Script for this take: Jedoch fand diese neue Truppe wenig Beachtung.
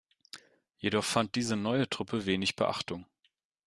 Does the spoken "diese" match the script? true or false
true